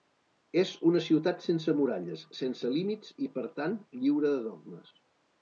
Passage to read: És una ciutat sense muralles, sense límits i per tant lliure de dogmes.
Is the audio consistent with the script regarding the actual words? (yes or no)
yes